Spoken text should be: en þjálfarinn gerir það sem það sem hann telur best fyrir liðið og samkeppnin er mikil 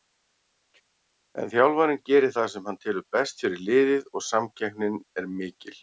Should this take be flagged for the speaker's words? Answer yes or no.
yes